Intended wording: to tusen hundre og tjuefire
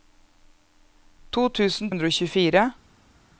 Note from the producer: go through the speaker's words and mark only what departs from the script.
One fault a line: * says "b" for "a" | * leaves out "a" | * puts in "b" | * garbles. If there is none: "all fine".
all fine